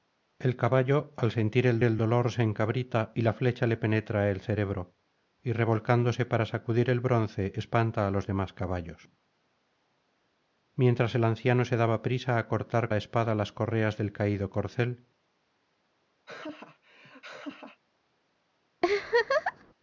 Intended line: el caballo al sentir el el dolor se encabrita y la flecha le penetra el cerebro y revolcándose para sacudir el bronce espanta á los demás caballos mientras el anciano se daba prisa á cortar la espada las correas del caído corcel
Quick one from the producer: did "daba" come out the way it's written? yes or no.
yes